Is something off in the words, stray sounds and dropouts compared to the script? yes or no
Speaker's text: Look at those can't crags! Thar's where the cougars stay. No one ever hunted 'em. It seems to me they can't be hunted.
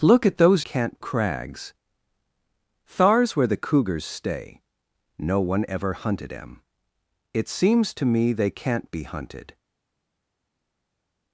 no